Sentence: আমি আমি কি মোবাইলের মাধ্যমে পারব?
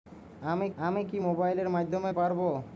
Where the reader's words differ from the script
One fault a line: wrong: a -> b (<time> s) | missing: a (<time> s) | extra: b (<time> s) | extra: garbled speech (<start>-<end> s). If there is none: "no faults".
no faults